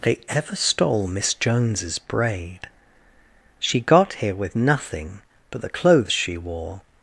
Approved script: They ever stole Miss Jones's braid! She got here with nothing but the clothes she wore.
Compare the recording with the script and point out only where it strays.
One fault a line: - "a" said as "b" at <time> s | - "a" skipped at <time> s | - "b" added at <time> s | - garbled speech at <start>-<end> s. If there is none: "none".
none